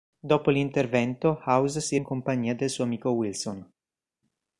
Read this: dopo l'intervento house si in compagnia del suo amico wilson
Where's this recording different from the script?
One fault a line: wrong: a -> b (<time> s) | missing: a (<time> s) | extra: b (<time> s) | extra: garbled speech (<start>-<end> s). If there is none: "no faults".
no faults